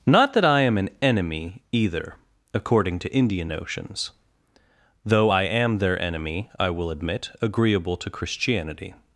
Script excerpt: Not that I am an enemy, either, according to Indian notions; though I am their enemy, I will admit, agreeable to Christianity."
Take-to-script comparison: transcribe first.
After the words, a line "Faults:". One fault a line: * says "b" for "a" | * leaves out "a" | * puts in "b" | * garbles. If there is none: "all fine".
Not that I am an enemy, either, according to Indian notions; though I am their enemy, I will admit, agreeable to Christianity."
Faults:
all fine